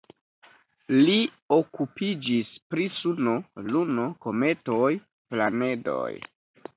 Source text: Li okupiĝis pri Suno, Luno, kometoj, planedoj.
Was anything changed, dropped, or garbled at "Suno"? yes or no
no